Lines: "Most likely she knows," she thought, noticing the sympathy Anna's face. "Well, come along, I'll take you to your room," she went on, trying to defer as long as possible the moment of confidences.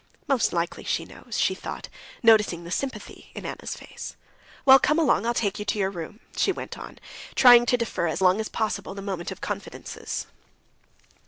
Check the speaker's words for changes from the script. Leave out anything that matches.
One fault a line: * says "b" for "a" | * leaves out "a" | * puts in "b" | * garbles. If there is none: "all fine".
* puts in "in"